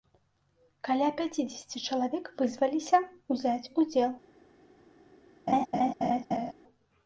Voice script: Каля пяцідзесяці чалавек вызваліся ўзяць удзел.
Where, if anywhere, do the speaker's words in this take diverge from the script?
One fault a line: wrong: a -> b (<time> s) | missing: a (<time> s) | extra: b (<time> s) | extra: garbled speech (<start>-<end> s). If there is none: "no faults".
no faults